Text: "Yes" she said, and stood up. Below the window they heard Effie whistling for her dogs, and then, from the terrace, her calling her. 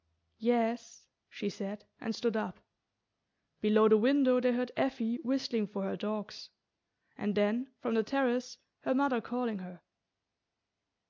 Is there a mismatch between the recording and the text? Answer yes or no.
yes